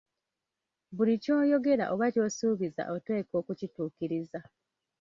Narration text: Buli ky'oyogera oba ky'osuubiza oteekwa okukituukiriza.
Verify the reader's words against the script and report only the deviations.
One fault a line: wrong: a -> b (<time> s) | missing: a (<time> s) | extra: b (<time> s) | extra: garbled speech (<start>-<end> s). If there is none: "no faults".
no faults